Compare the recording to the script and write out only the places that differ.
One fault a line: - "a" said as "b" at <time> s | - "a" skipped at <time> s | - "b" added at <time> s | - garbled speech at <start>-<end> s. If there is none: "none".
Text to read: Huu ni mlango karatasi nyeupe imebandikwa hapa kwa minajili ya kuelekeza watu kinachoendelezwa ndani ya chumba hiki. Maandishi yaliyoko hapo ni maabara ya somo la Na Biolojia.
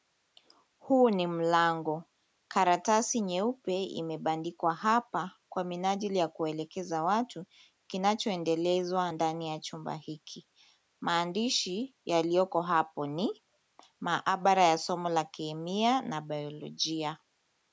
- "Kemia" added at 15.2 s